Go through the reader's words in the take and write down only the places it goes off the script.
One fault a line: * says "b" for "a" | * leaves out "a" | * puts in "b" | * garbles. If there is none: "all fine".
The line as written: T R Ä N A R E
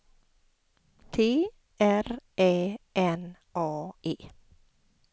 * leaves out "R"